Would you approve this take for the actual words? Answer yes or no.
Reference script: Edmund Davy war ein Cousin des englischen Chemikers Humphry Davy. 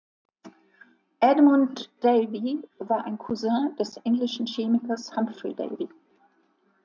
yes